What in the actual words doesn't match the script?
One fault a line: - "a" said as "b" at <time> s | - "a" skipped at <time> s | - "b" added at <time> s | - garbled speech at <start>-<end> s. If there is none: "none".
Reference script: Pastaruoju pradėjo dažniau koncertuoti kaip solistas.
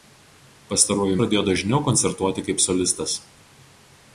none